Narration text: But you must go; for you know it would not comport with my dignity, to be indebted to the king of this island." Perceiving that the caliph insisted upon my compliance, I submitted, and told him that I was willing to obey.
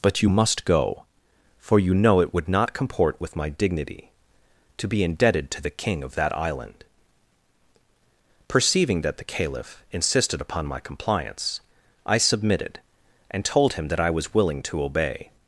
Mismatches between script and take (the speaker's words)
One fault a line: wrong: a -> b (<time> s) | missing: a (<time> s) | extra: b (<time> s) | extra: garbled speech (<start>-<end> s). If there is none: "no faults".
wrong: this -> that (6.1 s)